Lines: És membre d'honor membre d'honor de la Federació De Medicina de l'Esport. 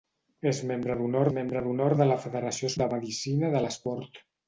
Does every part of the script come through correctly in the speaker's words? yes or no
yes